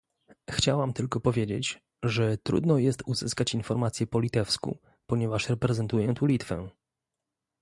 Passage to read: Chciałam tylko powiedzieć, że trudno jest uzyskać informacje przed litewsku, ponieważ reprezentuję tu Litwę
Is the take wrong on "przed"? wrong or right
wrong